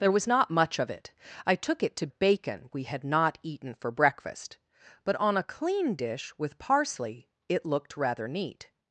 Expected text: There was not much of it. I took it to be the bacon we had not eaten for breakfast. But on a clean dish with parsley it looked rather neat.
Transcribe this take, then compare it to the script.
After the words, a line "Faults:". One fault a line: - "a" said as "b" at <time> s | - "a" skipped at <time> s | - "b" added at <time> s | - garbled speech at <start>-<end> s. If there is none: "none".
There was not much of it. I took it to bacon we had not eaten for breakfast. But on a clean dish with parsley it looked rather neat.
Faults:
- "be the" skipped at 2.1 s